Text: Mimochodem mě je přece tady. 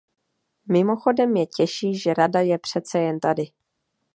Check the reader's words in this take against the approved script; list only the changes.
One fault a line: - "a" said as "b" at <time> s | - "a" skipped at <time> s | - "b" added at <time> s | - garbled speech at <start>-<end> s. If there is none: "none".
- "těší že Rada" added at 1.4 s
- "jen" added at 3.0 s